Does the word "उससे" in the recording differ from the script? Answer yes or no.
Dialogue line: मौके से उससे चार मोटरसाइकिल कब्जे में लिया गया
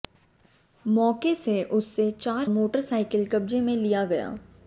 no